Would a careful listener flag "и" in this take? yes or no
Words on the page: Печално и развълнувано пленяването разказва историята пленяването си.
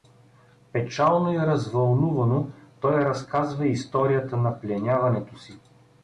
no